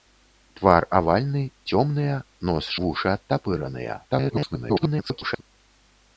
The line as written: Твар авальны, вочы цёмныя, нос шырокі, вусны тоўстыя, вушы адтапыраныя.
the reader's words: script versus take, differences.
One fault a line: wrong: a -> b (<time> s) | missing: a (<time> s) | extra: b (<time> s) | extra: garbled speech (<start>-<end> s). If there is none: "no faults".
missing: вочы (1.4 s)
missing: шырокі вусны тоўстыя (2.7 s)
extra: garbled speech (4.1-5.4 s)